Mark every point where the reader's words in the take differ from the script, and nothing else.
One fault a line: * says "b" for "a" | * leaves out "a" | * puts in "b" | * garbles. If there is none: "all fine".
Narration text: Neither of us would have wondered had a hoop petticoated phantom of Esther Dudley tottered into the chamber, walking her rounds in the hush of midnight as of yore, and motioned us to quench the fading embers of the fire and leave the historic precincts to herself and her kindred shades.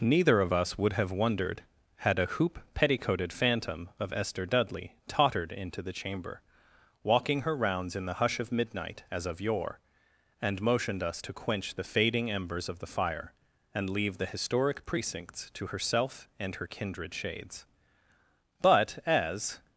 * puts in "But as"